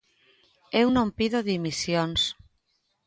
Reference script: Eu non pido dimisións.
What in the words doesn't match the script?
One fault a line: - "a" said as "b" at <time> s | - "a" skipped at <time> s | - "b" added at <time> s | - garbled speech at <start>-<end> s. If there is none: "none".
none